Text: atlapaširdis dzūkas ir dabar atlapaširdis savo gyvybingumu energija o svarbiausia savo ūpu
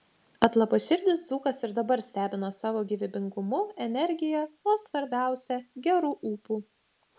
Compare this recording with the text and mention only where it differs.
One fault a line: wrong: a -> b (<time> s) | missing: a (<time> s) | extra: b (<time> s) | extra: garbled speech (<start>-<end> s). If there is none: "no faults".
wrong: atlapaširdis -> stebina (2.0 s)
wrong: savo -> geru (5.9 s)